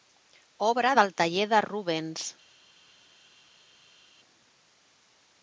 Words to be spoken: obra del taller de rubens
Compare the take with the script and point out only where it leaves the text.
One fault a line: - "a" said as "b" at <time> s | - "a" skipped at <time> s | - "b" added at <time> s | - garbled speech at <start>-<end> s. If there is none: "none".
none